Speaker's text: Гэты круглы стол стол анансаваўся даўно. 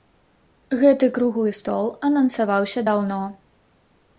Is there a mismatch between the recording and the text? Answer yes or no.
yes